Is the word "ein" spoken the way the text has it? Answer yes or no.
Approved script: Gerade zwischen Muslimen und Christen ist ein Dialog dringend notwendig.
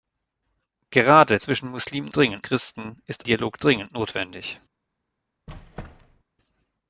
no